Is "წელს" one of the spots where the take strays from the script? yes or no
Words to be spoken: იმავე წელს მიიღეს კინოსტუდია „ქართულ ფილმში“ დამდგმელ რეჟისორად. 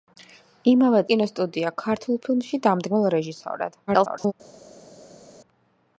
yes